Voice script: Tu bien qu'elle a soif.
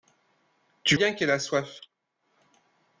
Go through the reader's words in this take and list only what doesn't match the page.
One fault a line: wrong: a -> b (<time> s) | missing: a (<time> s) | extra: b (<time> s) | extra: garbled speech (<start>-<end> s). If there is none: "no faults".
no faults